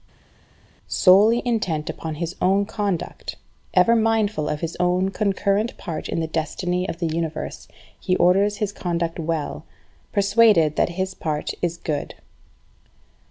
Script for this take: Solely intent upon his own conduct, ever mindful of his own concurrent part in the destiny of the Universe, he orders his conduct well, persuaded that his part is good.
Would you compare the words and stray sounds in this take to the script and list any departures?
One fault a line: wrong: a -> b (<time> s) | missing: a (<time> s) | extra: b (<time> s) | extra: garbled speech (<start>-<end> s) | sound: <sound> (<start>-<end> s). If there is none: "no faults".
no faults